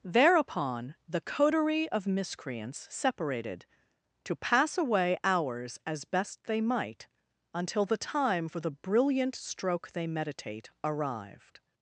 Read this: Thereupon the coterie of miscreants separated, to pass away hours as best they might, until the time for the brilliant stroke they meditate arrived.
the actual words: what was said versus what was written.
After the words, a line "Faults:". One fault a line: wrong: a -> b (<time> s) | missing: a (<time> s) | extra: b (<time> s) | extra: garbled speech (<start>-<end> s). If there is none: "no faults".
Thereupon the coterie of miscreants separated, to pass away hours as best they might, until the time for the brilliant stroke they meditate arrived.
Faults:
no faults